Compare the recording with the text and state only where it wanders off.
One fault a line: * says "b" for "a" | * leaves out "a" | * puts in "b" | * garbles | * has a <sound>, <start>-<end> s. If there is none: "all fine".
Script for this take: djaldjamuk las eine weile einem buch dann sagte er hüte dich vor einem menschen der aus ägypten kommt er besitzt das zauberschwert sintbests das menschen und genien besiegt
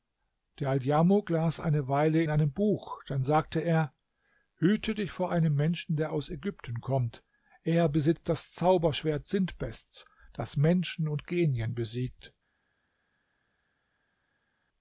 all fine